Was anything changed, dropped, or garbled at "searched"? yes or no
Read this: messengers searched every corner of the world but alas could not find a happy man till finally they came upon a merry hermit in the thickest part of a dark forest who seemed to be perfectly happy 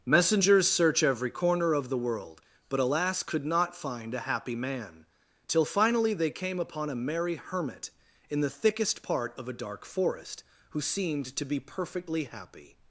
yes